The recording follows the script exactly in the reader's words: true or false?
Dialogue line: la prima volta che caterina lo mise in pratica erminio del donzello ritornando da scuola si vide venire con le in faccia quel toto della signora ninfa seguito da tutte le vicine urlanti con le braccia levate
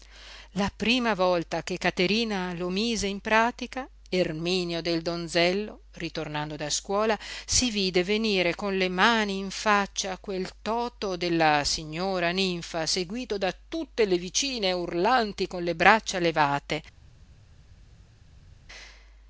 false